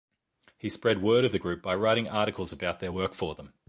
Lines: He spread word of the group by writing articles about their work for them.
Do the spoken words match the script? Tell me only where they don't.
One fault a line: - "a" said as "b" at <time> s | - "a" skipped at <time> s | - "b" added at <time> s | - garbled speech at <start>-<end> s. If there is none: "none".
none